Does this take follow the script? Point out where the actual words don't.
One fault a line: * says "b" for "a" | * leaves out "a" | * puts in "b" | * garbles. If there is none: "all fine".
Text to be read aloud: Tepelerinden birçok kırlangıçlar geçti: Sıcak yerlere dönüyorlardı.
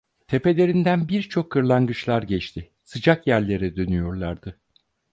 all fine